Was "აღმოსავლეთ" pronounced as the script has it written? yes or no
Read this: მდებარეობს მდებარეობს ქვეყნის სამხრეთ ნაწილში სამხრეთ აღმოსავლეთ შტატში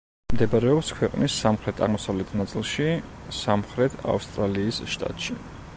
no